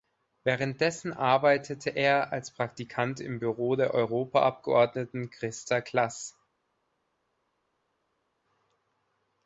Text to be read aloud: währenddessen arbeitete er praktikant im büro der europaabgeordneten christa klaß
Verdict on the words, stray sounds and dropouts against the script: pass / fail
fail